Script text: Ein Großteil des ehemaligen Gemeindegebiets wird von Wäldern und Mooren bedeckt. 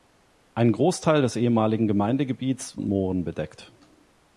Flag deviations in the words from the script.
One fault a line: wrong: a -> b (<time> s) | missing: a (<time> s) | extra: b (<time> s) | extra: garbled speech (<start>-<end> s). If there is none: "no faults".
missing: wird von Wäldern (2.8 s)